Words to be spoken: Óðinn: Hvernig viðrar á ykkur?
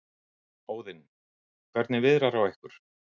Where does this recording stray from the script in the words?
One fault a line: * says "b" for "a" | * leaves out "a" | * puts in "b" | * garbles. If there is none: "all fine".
all fine